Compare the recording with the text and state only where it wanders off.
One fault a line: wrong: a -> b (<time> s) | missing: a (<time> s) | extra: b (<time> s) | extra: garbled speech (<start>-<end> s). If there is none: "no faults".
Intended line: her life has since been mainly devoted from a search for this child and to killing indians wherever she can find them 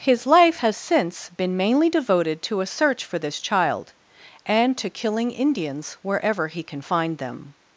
wrong: her -> his (0.0 s)
wrong: from -> to (2.4 s)
wrong: she -> he (6.5 s)